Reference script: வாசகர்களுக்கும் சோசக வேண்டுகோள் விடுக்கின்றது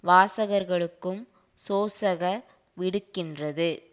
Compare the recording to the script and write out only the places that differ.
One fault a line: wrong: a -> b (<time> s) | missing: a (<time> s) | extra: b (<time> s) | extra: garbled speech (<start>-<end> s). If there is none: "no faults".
missing: வேண்டுகோள் (2.2 s)